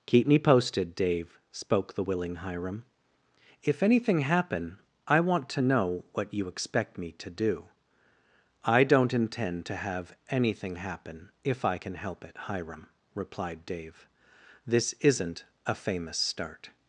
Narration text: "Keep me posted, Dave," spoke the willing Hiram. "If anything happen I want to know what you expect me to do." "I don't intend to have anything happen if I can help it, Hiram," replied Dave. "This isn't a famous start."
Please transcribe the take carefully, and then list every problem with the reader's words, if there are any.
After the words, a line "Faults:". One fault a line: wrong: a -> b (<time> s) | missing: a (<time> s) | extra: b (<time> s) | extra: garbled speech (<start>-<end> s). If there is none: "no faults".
"Keep me posted, Dave," spoke the willing Hiram. "If anything happen I want to know what you expect me to do." "I don't intend to have anything happen if I can help it, Hiram," replied Dave. "This isn't a famous start."
Faults:
no faults